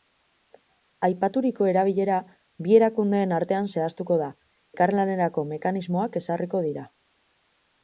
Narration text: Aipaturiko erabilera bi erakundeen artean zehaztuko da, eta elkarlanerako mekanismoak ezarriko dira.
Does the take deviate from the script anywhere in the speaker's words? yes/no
yes